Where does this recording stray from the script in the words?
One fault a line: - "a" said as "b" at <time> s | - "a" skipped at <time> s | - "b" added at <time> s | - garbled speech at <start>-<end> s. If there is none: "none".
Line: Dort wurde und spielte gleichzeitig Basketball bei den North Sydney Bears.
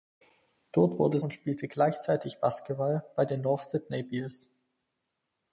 none